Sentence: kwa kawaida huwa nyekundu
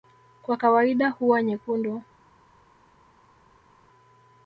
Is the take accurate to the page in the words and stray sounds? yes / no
yes